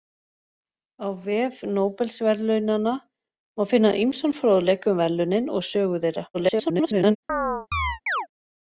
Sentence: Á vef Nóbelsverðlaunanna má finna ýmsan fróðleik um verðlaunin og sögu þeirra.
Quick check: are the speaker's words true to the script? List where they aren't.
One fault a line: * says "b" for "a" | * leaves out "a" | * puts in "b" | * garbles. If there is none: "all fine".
* garbles